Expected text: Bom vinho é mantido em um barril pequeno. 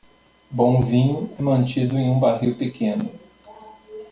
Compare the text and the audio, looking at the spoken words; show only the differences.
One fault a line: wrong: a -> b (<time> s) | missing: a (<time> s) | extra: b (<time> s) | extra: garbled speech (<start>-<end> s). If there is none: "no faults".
no faults